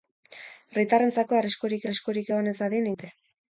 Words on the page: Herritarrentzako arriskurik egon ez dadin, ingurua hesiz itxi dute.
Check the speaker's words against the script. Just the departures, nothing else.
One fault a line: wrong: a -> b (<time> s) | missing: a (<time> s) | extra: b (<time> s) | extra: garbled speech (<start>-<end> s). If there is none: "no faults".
extra: arriskurik (1.8 s)
missing: ingurua hesiz itxi (2.9 s)